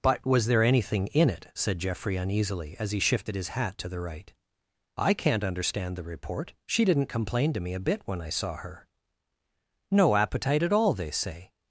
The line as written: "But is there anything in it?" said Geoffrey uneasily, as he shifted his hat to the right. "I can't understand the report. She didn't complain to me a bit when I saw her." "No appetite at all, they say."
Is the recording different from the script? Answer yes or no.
yes